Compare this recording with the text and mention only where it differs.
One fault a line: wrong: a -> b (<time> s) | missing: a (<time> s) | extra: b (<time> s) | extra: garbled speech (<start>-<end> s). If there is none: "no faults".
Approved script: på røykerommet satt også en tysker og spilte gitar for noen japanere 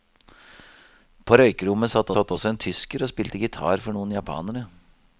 extra: satt (2.1 s)